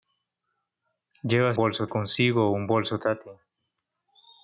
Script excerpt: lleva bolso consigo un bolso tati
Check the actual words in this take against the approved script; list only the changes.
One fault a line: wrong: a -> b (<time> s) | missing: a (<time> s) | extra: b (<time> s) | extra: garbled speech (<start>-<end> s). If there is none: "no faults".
no faults